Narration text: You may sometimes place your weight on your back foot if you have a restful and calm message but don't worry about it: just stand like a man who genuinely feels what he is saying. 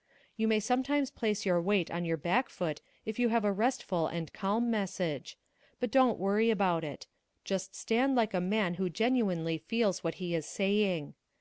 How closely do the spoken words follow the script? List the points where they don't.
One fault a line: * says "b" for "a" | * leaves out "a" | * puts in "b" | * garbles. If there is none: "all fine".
all fine